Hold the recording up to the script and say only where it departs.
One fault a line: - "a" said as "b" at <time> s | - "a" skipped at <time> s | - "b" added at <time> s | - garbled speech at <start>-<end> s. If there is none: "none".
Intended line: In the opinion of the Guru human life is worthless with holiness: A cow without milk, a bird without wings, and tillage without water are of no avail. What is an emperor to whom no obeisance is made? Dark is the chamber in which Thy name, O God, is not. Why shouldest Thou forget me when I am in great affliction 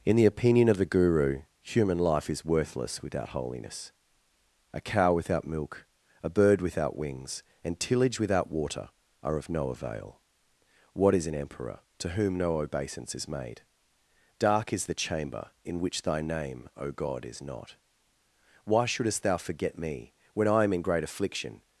- "with" said as "without" at 3.0 s